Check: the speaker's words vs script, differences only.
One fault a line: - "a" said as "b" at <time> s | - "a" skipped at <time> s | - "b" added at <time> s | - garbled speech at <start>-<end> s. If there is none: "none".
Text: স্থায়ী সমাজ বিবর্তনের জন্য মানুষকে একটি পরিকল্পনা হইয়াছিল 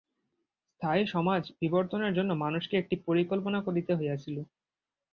- "করিতে" added at 3.7 s